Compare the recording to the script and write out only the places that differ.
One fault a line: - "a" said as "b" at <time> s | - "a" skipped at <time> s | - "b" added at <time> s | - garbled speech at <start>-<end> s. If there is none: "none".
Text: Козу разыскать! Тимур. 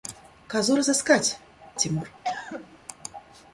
none